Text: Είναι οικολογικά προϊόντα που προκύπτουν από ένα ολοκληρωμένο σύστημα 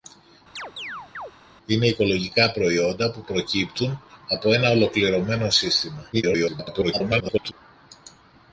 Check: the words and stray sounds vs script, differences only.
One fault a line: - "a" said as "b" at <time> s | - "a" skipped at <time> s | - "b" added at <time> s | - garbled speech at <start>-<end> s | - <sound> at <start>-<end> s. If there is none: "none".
- chirp at 0.6-1.3 s
- garbled speech at 6.1-7.5 s